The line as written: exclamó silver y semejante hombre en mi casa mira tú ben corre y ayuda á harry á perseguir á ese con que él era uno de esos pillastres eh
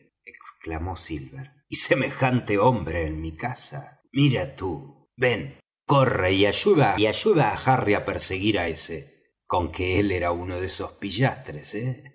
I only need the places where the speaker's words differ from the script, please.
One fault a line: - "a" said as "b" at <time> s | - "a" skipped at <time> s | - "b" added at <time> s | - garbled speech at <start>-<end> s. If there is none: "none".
- "y ayuda" added at 6.9 s